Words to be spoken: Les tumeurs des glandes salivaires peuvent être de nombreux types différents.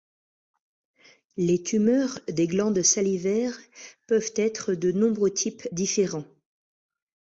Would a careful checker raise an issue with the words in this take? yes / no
no